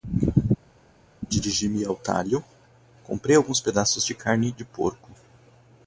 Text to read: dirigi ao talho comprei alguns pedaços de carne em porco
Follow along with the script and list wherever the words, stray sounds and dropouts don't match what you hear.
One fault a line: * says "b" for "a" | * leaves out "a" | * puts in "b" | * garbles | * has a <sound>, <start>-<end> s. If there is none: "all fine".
* puts in "me"
* says "de" for "em"